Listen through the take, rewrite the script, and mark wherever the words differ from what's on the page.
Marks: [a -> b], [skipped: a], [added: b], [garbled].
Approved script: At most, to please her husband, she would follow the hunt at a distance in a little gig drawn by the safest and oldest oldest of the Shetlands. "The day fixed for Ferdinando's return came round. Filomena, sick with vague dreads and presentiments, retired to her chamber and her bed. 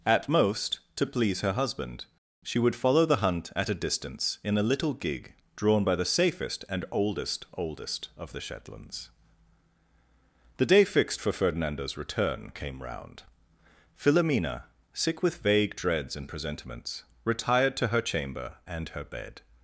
At most, to please her husband, she would follow the hunt at a distance in a little gig drawn by the safest and oldest oldest of the Shetlands. "The day fixed for Ferdinando's return came round. Filomena, sick with vague dreads and presentiments, retired to her chamber and her bed.